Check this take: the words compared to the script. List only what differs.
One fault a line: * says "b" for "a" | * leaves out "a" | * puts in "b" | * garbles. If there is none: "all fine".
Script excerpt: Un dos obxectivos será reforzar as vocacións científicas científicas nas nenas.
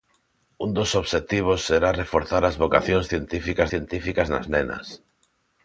all fine